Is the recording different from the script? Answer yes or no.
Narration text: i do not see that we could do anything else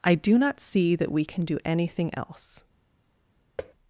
yes